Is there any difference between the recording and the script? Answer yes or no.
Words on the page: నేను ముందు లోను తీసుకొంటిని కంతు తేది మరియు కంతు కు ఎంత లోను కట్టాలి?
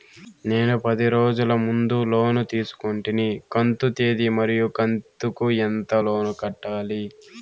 yes